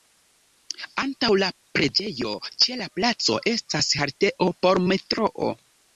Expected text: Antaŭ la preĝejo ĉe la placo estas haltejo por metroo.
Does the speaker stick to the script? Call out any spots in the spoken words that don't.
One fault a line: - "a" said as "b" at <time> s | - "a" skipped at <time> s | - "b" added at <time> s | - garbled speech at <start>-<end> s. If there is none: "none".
none